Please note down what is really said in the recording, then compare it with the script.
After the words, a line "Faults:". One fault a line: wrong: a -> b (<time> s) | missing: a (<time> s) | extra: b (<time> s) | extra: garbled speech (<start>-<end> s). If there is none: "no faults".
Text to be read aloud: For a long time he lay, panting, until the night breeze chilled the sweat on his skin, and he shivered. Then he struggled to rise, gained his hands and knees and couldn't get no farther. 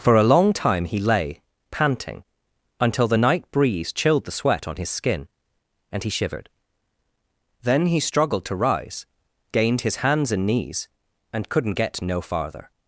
For a long time he lay, panting, until the night breeze chilled the sweat on his skin, and he shivered. Then he struggled to rise, gained his hands and knees and couldn't get no farther.
Faults:
no faults